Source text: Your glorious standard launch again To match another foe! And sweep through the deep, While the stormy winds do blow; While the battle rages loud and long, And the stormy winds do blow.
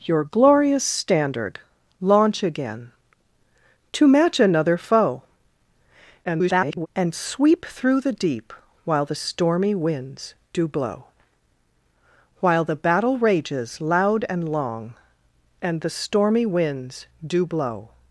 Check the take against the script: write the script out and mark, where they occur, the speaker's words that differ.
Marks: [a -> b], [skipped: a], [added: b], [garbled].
Your glorious standard launch again To match another foe! [garbled] And sweep through the deep, While the stormy winds do blow; While the battle rages loud and long, And the stormy winds do blow.